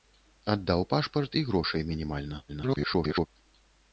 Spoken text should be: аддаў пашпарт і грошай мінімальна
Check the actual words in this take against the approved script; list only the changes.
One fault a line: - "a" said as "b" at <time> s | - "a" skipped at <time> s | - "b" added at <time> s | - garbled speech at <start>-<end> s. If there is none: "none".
- garbled speech at 2.5-3.3 s